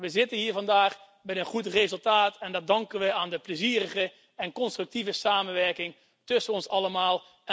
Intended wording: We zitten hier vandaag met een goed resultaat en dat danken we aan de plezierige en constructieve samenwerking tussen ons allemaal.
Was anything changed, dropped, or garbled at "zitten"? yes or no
no